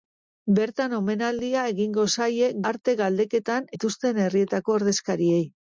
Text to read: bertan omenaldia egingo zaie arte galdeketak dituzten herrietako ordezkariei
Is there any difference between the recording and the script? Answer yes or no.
no